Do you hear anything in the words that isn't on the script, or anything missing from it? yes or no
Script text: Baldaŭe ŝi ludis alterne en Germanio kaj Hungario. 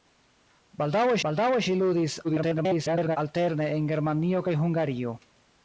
yes